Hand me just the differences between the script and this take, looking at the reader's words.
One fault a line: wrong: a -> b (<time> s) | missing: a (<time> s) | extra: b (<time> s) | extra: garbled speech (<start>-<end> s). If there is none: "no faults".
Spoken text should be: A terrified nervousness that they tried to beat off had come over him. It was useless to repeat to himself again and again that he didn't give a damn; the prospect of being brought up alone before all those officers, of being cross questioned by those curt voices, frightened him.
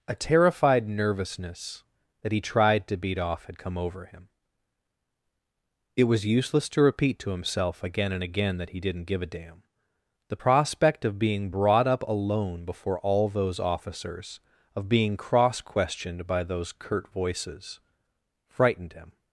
wrong: they -> he (2.3 s)